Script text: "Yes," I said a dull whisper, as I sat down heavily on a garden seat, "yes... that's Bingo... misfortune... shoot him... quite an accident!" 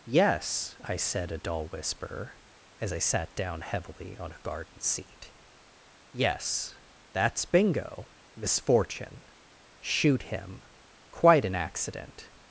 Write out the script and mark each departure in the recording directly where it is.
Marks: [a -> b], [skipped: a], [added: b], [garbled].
"Yes," I said a dull whisper, as I sat down heavily on a garden seat, "yes... that's Bingo... misfortune... shoot him... quite an accident!"